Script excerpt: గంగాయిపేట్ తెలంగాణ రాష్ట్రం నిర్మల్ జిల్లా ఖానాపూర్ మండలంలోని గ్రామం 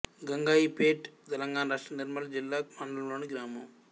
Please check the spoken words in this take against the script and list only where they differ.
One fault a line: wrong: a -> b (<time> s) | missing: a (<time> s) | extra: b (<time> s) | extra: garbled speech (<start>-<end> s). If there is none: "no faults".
missing: ఖానాపూర్ (2.6 s)